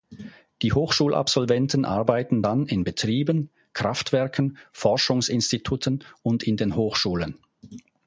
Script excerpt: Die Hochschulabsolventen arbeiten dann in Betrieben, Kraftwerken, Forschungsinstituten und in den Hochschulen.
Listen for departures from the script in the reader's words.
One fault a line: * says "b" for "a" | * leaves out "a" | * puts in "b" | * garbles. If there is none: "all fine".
all fine